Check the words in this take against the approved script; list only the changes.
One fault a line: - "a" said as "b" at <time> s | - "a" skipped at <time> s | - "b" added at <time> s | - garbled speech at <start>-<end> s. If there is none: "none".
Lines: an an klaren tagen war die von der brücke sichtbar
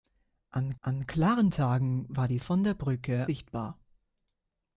none